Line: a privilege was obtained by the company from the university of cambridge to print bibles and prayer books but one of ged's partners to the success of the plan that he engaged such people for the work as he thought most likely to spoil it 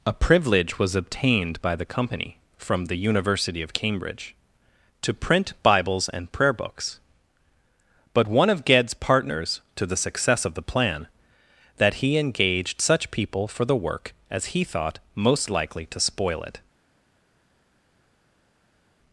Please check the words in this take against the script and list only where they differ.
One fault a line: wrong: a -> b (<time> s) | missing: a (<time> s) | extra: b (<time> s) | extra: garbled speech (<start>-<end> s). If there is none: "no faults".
no faults